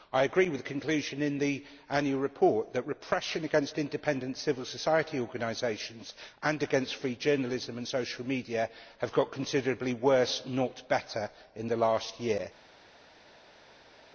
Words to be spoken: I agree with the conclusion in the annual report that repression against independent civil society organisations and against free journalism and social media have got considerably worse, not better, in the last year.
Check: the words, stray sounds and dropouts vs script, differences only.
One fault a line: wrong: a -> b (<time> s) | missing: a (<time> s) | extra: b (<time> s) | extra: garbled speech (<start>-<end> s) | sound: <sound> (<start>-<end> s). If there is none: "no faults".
no faults